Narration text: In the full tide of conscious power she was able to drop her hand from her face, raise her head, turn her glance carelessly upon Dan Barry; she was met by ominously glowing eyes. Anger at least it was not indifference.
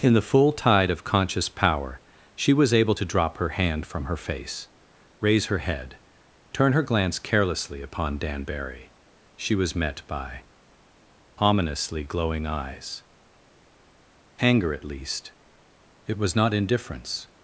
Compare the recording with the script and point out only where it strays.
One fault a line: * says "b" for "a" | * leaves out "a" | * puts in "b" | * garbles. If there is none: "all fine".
all fine